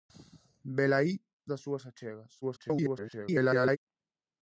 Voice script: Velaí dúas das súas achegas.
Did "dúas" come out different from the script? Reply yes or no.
yes